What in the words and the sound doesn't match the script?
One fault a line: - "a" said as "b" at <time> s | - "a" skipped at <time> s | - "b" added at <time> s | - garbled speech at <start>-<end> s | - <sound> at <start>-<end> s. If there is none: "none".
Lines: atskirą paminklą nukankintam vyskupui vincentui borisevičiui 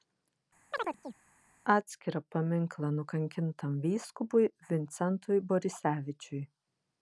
- chirp at 0.7-1.2 s